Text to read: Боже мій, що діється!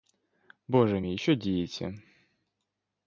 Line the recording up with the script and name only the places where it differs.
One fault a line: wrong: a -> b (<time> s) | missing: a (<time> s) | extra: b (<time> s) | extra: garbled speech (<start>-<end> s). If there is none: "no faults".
no faults